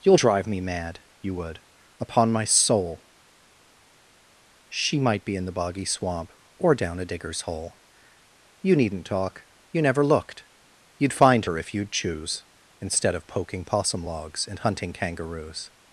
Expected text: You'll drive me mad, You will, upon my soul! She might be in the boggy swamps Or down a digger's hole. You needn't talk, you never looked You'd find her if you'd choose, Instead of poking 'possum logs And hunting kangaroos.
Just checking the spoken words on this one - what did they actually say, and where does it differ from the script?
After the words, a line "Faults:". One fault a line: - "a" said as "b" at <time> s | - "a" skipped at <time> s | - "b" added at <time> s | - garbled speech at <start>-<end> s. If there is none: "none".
You'll drive me mad, You would, upon my soul! She might be in the boggy swamp Or down a digger's hole. You needn't talk, you never looked You'd find her if you'd choose, Instead of poking 'possum logs And hunting kangaroos.
Faults:
- "will" said as "would" at 1.3 s
- "swamps" said as "swamp" at 5.8 s